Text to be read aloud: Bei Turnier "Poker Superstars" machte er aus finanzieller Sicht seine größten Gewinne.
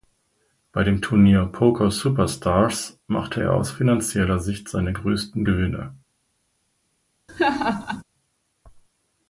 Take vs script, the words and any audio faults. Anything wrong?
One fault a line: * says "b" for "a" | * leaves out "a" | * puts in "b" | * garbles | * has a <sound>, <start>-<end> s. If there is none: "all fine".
* puts in "dem"
* has a laugh, 7.3-8.0 s